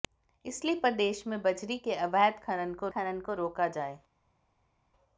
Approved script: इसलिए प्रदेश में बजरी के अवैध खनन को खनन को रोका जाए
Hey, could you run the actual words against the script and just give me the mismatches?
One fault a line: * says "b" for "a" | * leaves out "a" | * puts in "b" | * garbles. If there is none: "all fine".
all fine